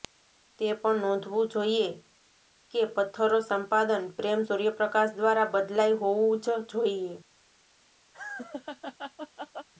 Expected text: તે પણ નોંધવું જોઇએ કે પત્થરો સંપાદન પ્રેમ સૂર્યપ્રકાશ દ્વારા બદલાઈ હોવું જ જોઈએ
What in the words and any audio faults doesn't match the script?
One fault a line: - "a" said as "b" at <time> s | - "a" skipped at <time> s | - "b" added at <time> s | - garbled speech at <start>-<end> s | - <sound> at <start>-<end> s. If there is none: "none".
- laugh at 8.1-9.7 s